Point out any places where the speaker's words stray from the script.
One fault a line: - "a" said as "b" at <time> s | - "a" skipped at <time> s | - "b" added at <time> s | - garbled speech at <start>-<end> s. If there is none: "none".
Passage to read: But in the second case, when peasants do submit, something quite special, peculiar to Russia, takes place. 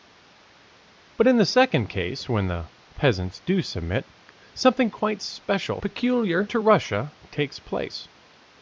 - "the" added at 2.5 s